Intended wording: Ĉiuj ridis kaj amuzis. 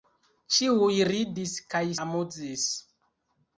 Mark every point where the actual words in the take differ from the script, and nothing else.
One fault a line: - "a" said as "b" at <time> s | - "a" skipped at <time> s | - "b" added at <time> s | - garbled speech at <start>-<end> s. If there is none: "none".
none